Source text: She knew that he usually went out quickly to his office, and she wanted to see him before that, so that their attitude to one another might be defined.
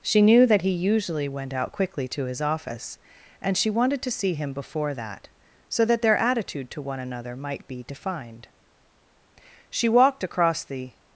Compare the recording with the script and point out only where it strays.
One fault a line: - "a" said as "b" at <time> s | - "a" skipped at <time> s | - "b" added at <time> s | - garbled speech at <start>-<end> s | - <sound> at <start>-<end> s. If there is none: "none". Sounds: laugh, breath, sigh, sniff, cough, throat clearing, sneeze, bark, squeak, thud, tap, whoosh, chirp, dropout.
- "She walked across the" added at 9.7 s